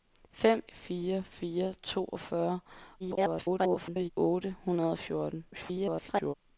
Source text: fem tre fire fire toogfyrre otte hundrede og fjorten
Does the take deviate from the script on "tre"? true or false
true